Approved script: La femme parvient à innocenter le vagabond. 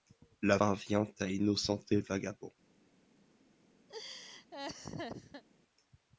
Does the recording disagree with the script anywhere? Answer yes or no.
yes